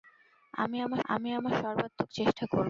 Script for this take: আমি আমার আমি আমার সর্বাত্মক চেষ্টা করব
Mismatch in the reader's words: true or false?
false